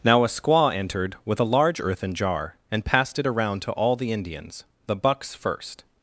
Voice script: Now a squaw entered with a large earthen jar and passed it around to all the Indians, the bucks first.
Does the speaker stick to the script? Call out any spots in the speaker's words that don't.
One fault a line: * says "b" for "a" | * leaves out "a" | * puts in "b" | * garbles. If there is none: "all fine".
all fine